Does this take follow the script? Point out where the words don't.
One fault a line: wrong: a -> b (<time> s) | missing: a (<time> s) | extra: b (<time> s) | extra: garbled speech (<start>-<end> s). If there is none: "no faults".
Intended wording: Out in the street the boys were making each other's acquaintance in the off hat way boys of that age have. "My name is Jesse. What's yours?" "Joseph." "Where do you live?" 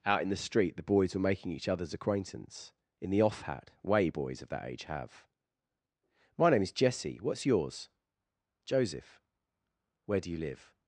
no faults